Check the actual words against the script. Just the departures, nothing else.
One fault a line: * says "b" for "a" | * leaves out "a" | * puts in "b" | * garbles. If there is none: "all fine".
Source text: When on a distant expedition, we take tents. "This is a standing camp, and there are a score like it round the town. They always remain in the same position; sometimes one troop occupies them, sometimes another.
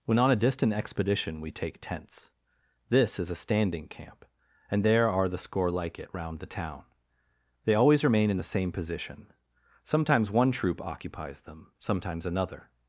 * says "the" for "a"